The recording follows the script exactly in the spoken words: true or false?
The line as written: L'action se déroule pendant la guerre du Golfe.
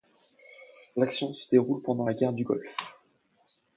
true